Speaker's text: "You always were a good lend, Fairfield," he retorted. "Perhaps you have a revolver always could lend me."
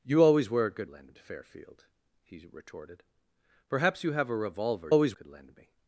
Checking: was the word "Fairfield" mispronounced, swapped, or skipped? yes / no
no